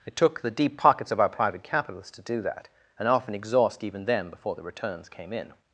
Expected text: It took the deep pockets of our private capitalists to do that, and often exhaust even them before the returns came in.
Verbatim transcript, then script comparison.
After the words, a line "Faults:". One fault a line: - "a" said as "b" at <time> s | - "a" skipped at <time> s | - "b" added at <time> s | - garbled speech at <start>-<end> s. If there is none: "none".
It took the deep pockets of our private capitalists to do that, and often exhaust even them before the returns came in.
Faults:
none